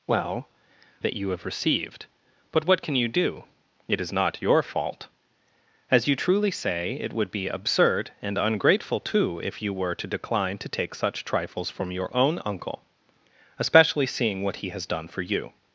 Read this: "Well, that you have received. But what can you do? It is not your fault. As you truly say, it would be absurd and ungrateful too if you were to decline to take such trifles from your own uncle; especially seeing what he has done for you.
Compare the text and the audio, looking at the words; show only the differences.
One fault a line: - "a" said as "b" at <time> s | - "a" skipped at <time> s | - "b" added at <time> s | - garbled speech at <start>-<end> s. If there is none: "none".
none